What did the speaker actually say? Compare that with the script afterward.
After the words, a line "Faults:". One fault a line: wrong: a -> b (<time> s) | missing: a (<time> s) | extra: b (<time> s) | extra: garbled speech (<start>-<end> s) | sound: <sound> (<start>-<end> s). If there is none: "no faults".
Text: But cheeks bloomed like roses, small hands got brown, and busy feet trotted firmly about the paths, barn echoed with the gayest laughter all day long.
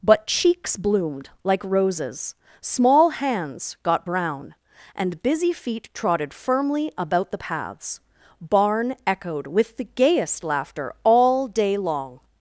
But cheeks bloomed like roses, small hands got brown, and busy feet trotted firmly about the paths, barn echoed with the gayest laughter all day long.
Faults:
no faults